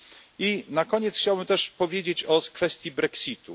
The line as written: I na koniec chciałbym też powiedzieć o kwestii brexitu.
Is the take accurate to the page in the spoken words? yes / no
yes